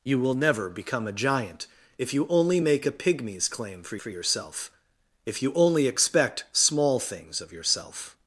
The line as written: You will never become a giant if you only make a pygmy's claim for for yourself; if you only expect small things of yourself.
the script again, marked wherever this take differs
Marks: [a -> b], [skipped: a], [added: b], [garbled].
You will never become a giant if you only make a pygmy's claim for for yourself; if you only expect small things of yourself.